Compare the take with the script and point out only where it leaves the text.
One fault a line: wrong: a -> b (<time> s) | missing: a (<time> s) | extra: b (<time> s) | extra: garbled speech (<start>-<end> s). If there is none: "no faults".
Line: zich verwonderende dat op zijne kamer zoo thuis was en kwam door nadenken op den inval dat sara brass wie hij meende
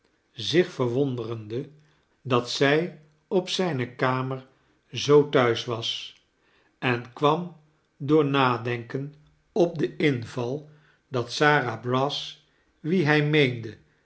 extra: zij (2.5 s)